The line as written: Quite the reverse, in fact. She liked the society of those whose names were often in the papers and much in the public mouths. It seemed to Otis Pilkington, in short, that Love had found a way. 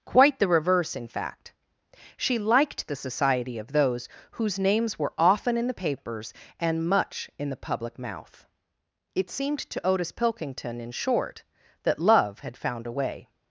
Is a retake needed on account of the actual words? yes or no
yes